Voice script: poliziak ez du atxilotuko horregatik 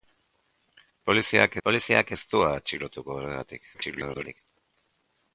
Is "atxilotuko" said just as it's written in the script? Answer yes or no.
yes